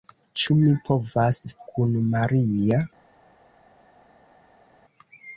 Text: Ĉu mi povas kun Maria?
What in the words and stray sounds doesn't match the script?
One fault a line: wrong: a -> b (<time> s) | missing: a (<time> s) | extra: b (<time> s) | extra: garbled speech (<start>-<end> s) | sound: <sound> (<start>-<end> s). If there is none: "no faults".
no faults